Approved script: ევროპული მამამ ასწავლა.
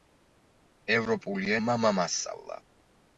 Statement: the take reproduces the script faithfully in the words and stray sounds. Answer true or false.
true